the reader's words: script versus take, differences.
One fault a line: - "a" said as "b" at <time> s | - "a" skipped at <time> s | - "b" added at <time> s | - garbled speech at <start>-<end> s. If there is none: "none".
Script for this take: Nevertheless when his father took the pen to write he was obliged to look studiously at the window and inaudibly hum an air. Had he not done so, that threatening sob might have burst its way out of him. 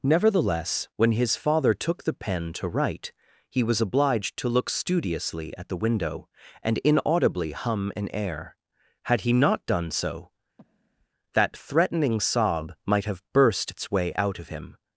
none